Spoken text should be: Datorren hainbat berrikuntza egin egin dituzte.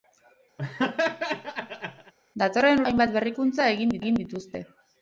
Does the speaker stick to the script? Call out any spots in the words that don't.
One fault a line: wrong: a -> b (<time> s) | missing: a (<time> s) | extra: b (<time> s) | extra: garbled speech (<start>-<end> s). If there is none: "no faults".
no faults